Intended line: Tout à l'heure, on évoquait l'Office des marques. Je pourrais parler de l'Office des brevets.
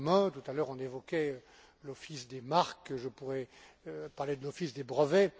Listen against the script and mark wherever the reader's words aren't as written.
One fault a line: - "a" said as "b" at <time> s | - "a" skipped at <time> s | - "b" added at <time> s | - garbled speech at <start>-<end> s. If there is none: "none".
none